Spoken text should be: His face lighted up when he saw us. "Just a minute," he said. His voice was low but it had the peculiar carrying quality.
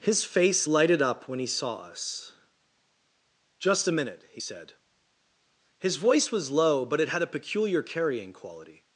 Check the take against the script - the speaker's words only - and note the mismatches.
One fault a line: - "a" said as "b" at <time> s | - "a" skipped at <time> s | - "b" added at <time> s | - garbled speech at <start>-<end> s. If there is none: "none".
- "the" said as "a" at 7.2 s